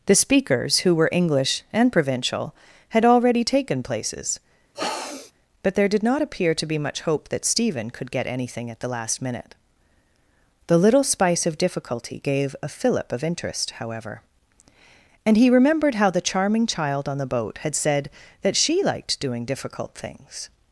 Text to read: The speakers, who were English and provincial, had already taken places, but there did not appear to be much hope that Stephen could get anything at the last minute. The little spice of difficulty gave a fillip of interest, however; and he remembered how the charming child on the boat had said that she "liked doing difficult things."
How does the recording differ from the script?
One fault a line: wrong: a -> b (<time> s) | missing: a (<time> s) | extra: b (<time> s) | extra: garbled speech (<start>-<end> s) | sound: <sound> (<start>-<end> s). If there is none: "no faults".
sound: sniff (4.7-5.3 s)